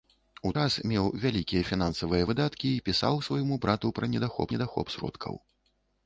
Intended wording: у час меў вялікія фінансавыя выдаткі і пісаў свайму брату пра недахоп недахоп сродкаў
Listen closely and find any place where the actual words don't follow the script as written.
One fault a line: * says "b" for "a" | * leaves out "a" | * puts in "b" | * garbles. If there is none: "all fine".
all fine